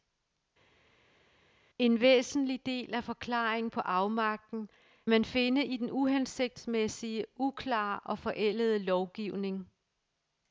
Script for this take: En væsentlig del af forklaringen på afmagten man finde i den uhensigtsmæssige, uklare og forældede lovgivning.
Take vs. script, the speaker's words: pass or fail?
pass